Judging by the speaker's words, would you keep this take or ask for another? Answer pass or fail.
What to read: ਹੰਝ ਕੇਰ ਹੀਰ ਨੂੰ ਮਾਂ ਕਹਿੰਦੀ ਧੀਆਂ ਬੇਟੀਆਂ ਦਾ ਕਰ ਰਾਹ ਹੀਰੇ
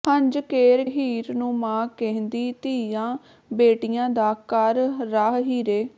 pass